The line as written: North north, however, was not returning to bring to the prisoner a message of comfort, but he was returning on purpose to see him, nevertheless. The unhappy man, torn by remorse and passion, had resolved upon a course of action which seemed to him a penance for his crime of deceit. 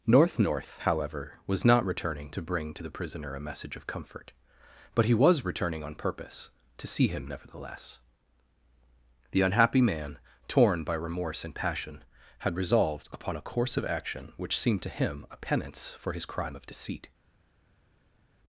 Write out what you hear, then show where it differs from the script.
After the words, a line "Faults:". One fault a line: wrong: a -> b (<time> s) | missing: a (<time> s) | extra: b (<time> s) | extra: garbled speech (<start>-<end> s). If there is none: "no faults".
North north, however, was not returning to bring to the prisoner a message of comfort, but he was returning on purpose to see him, nevertheless. The unhappy man, torn by remorse and passion, had resolved upon a course of action which seemed to him a penance for his crime of deceit.
Faults:
no faults